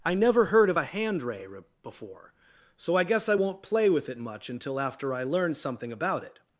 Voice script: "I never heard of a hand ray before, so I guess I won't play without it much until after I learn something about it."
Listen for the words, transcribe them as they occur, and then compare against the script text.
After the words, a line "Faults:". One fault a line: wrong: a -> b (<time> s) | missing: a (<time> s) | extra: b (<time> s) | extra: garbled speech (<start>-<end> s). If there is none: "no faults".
"I never heard of a hand ray before, so I guess I won't play with it much until after I learn something about it."
Faults:
wrong: without -> with (3.9 s)